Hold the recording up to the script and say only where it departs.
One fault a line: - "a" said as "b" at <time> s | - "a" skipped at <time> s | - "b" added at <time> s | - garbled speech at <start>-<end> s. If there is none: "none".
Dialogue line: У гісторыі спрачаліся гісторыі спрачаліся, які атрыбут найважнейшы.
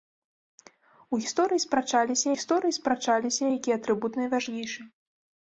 none